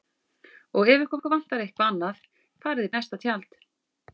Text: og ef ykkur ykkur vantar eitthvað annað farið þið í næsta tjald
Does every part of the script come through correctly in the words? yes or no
yes